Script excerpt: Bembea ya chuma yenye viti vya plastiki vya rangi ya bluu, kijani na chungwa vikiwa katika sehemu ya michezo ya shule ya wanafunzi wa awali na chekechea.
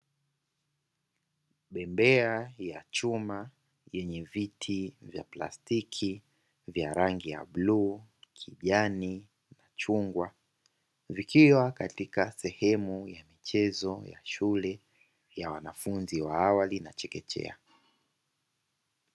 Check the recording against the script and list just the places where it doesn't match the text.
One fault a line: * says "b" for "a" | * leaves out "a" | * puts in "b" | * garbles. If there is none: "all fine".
all fine